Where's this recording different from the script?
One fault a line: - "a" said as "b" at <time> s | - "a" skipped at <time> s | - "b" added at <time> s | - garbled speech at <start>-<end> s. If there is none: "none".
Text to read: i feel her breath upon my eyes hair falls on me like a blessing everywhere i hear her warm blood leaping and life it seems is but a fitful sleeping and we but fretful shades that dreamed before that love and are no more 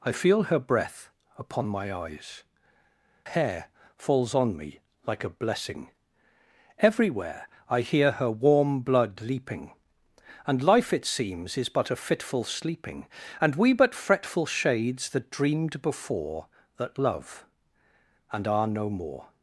none